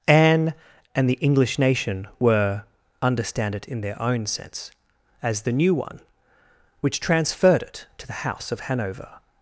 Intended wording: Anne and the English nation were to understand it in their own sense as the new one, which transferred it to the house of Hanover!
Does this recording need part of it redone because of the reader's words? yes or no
yes